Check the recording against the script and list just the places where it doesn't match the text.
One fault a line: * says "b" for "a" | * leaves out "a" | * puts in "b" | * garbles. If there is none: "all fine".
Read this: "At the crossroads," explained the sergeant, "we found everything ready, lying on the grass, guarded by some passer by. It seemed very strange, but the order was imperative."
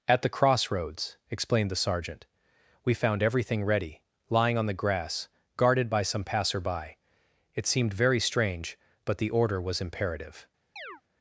all fine